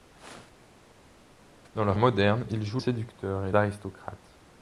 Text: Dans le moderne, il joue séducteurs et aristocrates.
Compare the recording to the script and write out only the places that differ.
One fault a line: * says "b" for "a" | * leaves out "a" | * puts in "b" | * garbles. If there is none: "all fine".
all fine